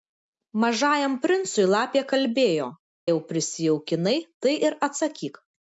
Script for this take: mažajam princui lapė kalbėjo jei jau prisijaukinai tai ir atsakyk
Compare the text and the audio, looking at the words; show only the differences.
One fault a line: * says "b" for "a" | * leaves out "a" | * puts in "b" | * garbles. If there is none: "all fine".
* leaves out "jei"